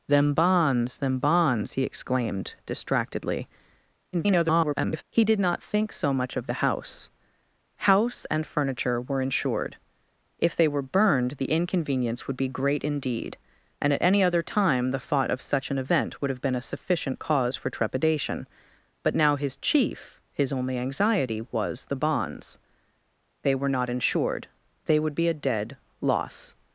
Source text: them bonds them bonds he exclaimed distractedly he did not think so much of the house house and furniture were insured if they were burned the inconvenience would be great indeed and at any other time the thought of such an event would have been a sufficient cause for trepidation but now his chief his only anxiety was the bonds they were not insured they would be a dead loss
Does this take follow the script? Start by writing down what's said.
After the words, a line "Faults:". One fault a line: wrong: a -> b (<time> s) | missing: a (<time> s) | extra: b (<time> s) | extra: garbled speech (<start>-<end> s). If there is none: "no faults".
them bonds them bonds he exclaimed distractedly [garbled] he did not think so much of the house house and furniture were insured if they were burned the inconvenience would be great indeed and at any other time the thought of such an event would have been a sufficient cause for trepidation but now his chief his only anxiety was the bonds they were not insured they would be a dead loss
Faults:
extra: garbled speech (4.1-5.0 s)